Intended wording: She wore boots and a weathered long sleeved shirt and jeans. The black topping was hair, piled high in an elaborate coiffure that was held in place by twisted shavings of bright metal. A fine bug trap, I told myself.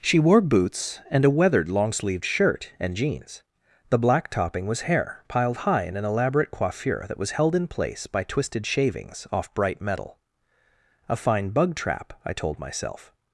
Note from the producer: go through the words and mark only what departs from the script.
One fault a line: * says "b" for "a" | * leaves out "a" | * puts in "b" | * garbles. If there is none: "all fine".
* says "off" for "of"